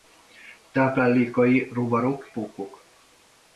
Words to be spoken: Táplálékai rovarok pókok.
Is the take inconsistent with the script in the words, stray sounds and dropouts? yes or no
no